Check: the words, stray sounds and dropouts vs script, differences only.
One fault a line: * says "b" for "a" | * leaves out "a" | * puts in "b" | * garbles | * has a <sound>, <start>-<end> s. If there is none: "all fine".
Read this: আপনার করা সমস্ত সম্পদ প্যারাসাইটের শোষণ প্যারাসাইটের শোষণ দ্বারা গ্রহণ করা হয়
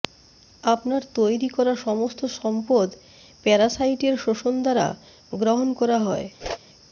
* puts in "তৈরি"
* leaves out "প্যারাসাইটের শোষণ"
* has a whoosh, 6.4-6.6 s